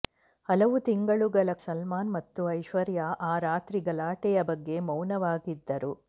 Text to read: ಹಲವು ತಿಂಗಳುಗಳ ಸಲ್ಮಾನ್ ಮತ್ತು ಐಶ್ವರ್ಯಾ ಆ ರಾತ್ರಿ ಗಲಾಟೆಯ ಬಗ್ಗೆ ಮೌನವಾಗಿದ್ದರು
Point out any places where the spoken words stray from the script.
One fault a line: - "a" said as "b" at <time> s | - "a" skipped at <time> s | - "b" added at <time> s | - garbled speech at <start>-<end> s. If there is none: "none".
none